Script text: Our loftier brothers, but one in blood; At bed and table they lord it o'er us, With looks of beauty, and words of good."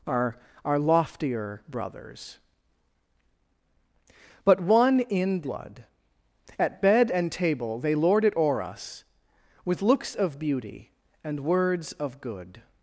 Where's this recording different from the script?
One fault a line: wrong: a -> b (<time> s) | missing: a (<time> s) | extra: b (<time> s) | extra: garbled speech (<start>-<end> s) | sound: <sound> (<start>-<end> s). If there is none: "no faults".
extra: our (0.6 s)